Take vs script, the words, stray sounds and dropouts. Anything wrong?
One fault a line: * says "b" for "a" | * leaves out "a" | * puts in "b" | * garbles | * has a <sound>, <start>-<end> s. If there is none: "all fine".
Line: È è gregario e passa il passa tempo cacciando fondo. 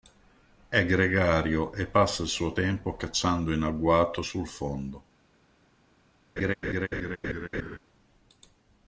* leaves out "è"
* says "suo" for "passa"
* puts in "in agguato sul"
* has a laugh, 6.4-7.8 s